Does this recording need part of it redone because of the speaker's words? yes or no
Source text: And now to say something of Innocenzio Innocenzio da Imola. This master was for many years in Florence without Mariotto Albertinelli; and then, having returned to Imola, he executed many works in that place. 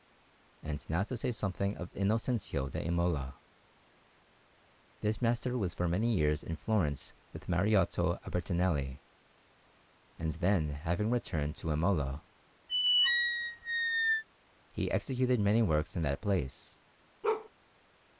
yes